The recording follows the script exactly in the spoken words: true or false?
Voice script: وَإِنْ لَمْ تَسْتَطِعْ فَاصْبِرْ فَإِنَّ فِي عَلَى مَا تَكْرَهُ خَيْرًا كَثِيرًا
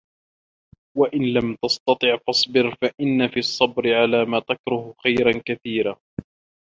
false